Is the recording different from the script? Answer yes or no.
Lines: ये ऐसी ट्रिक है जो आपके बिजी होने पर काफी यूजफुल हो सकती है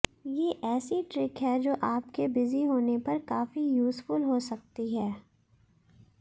no